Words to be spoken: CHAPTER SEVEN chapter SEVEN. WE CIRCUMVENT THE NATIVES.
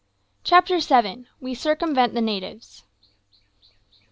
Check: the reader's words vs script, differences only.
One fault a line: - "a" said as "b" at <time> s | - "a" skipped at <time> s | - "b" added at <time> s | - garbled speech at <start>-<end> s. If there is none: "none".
- "chapter SEVEN" skipped at 1.3 s